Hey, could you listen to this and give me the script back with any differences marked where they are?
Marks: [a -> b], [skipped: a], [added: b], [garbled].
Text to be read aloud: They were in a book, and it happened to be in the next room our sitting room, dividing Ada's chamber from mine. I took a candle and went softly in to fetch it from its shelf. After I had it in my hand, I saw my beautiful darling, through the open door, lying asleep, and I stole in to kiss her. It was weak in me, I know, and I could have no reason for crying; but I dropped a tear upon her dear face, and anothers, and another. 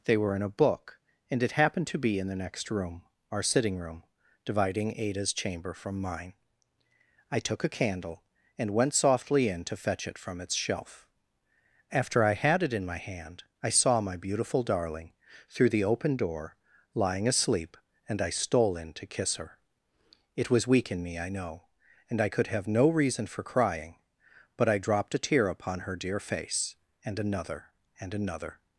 They were in a book, and it happened to be in the next room our sitting room, dividing Ada's chamber from mine. I took a candle and went softly in to fetch it from its shelf. After I had it in my hand, I saw my beautiful darling, through the open door, lying asleep, and I stole in to kiss her. It was weak in me, I know, and I could have no reason for crying; but I dropped a tear upon her dear face, and [anothers, -> another] and another.